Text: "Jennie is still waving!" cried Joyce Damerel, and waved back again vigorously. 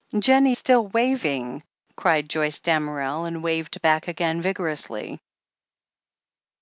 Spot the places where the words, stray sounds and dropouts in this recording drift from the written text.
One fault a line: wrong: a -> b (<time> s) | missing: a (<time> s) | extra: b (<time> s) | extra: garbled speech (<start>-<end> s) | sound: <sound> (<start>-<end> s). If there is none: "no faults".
missing: is (0.6 s)